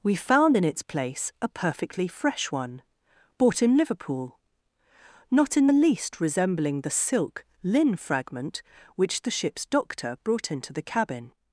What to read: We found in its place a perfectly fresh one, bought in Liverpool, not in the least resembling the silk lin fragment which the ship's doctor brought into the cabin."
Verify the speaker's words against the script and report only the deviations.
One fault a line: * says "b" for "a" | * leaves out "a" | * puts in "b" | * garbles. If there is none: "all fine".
all fine